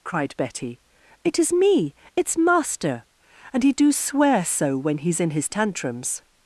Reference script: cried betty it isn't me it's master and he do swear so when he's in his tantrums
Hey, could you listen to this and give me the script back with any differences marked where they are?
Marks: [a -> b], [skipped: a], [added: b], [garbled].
cried betty it [isn't -> is] me it's master and he do swear so when he's in his tantrums